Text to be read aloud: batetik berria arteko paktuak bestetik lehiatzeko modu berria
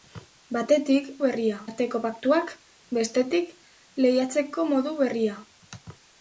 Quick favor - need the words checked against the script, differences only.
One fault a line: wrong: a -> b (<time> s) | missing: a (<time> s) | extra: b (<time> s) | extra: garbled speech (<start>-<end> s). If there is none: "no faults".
no faults